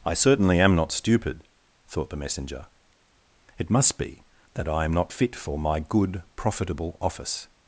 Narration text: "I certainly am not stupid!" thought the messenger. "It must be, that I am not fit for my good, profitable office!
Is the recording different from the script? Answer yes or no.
no